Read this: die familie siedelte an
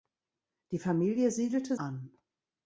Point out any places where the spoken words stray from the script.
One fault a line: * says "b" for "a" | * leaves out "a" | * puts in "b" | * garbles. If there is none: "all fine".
all fine